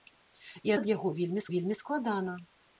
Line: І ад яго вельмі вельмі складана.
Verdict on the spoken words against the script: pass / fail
pass